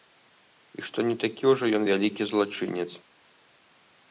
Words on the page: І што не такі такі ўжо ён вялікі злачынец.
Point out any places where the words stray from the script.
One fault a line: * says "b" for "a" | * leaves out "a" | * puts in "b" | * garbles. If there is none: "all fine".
* leaves out "такі"